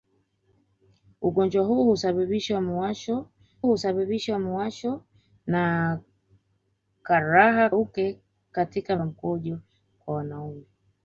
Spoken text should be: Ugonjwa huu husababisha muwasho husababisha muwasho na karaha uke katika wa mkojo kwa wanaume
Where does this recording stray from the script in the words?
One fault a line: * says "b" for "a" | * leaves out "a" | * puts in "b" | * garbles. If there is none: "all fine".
all fine